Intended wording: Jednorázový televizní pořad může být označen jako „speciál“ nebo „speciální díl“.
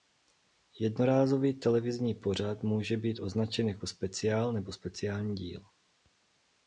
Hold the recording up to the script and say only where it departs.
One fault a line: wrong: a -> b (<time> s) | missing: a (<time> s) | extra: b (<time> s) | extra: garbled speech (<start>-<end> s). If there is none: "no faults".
no faults